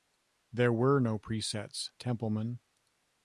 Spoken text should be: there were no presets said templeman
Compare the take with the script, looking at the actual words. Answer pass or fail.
fail